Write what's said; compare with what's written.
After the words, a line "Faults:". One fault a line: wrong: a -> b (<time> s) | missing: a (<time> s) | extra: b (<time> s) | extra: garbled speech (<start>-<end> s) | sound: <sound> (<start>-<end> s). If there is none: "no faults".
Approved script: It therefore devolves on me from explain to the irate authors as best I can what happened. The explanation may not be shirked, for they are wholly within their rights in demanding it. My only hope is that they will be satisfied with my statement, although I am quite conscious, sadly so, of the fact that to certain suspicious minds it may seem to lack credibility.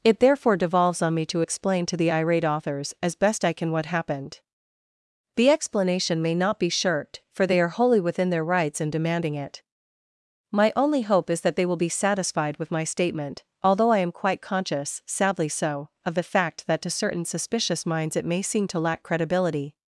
It therefore devolves on me to explain to the irate authors as best I can what happened. The explanation may not be shirked, for they are wholly within their rights in demanding it. My only hope is that they will be satisfied with my statement, although I am quite conscious, sadly so, of the fact that to certain suspicious minds it may seem to lack credibility.
Faults:
wrong: from -> to (1.3 s)